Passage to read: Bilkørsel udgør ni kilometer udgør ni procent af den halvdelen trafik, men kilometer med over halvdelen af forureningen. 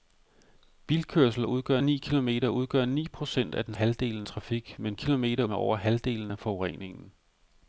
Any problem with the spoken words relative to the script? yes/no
no